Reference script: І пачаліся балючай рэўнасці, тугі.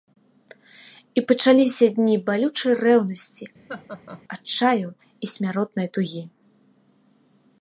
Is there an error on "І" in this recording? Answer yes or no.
no